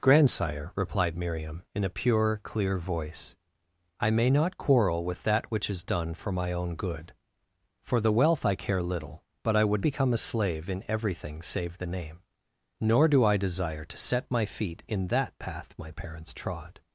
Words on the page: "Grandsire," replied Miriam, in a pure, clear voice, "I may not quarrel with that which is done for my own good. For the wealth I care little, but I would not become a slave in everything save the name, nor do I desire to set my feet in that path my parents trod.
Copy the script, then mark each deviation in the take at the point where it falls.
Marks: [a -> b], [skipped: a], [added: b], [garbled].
"Grandsire," replied Miriam, in a pure, clear voice, "I may not quarrel with that which is done for my own good. For the wealth I care little, but I would [skipped: not] become a slave in everything save the name, nor do I desire to set my feet in that path my parents trod.